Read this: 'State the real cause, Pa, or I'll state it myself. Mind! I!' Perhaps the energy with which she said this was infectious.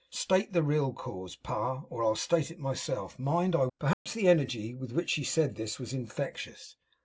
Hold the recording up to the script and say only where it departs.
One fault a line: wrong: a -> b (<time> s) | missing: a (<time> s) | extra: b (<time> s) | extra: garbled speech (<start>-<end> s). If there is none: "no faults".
no faults